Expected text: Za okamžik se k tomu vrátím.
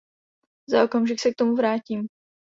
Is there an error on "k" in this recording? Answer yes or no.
no